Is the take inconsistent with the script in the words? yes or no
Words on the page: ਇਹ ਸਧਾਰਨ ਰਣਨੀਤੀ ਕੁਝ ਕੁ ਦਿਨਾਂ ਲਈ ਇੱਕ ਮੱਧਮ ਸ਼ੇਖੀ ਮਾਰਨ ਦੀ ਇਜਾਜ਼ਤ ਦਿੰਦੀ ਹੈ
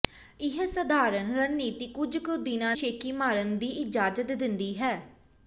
yes